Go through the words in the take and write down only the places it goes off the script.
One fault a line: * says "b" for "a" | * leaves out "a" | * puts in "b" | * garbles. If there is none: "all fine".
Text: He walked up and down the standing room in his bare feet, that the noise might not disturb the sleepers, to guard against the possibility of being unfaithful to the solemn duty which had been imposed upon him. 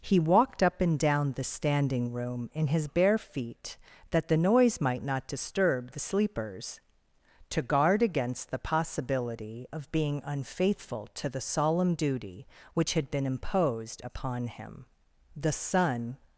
* puts in "The sun"